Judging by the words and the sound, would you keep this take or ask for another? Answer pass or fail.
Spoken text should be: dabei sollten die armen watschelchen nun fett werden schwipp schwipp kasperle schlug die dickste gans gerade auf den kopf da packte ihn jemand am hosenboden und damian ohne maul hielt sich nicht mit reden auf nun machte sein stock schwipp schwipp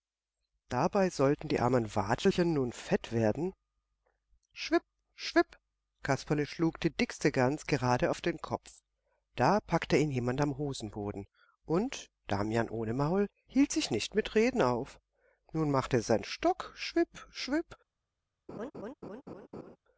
fail